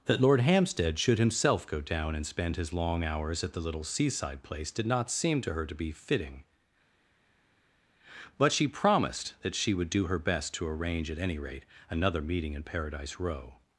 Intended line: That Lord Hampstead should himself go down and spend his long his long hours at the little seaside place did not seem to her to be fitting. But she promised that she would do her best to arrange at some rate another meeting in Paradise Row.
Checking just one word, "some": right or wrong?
wrong